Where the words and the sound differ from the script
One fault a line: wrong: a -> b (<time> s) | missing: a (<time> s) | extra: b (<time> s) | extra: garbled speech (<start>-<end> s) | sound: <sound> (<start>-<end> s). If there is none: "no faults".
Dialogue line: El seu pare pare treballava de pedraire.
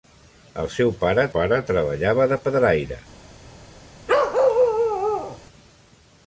sound: bark (4.1-5.4 s)